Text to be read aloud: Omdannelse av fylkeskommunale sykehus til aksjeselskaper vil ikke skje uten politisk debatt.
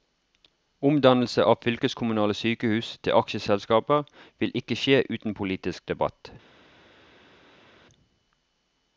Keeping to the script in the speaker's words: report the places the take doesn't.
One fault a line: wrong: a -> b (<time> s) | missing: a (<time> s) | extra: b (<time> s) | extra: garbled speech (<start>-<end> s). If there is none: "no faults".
no faults